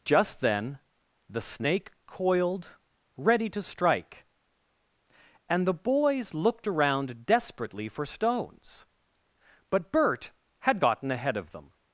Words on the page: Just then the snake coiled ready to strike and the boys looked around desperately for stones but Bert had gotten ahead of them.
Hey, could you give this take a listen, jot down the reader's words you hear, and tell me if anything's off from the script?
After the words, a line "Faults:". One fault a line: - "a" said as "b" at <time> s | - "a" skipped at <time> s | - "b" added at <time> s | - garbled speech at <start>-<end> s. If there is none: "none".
Just then the snake coiled ready to strike and the boys looked around desperately for stones but Bert had gotten ahead of them.
Faults:
none